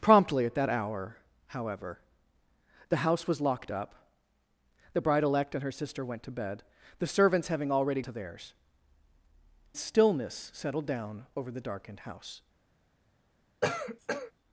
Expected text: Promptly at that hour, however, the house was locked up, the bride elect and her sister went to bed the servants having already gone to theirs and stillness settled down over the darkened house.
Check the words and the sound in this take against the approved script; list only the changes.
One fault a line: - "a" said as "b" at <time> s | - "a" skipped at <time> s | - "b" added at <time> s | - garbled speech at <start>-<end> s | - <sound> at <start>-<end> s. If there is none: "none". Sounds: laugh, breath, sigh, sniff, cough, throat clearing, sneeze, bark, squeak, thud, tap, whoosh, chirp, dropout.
- "gone" skipped at 8.0 s
- "and" skipped at 8.5 s
- cough at 13.6-14.3 s